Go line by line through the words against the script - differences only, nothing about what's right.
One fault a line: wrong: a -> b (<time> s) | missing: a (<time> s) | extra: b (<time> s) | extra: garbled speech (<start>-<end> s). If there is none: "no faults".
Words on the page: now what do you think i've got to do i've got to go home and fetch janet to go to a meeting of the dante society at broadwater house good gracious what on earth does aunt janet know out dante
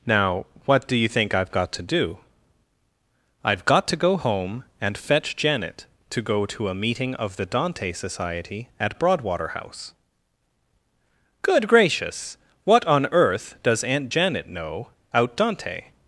no faults